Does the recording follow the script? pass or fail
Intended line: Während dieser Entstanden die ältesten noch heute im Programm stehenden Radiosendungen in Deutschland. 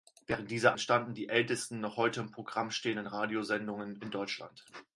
pass